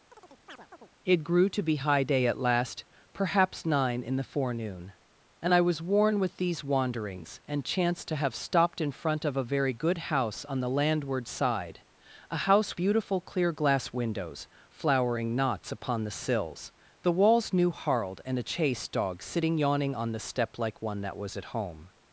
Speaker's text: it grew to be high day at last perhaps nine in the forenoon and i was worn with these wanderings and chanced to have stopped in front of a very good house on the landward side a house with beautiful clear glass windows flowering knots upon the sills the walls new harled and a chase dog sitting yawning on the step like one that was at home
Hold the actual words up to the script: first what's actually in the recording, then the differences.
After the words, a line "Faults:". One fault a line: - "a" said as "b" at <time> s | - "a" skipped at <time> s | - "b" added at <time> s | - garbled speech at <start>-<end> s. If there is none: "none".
it grew to be high day at last perhaps nine in the forenoon and i was worn with these wanderings and chanced to have stopped in front of a very good house on the landward side a house beautiful clear glass windows flowering knots upon the sills the walls new harled and a chase dog sitting yawning on the step like one that was at home
Faults:
- "with" skipped at 12.8 s